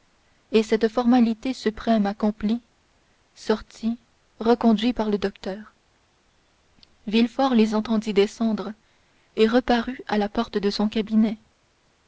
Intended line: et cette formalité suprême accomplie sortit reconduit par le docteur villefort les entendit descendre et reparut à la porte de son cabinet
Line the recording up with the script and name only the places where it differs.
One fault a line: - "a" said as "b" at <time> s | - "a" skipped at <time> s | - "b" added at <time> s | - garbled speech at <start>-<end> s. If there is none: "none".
none